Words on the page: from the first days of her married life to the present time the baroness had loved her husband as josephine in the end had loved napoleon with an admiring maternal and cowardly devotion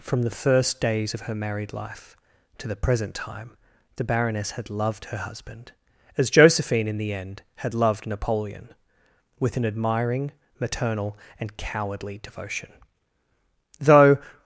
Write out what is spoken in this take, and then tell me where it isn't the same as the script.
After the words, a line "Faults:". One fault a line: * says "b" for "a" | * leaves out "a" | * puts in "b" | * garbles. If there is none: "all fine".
from the first days of her married life to the present time the baroness had loved her husband as josephine in the end had loved napoleon with an admiring maternal and cowardly devotion though
Faults:
* puts in "though"